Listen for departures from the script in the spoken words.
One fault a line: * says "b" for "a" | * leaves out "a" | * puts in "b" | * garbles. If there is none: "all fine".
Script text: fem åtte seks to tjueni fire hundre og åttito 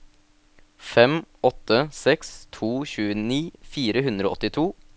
all fine